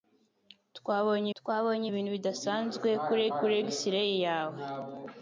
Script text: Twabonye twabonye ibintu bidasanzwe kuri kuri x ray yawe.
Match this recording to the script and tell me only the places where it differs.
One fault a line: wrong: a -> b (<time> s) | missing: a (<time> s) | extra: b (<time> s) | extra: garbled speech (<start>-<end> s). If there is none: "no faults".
no faults